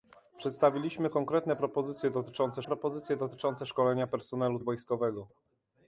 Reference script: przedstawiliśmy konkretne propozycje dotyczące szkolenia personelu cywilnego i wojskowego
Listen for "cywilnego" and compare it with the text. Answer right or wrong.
wrong